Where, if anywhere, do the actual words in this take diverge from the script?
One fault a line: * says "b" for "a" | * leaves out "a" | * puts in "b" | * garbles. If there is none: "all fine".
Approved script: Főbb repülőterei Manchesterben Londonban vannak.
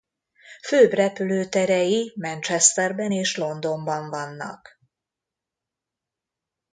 * puts in "és"